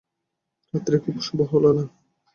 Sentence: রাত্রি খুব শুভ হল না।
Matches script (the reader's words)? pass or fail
pass